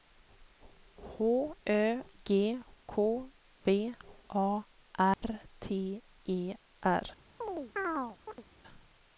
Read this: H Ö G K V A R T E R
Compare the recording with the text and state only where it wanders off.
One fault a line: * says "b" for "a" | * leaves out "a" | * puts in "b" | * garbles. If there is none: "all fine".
all fine